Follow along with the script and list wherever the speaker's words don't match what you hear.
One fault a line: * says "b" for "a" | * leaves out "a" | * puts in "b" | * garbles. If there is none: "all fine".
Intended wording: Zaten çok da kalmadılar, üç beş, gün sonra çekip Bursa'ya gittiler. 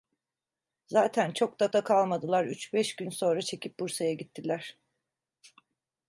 * puts in "da"